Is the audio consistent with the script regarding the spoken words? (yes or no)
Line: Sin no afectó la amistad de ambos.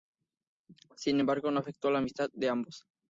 no